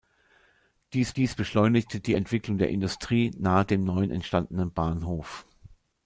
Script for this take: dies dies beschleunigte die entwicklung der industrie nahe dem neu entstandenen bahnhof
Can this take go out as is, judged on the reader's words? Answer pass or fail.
pass